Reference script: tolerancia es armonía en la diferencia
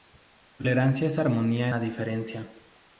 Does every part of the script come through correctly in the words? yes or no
no